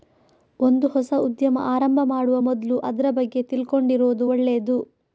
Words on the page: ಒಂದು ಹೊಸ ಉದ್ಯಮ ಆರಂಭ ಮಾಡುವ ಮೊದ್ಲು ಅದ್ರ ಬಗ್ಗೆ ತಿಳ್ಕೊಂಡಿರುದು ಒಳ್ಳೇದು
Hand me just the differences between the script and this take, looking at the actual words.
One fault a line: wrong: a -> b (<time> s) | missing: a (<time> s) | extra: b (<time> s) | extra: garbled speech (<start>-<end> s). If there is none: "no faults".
no faults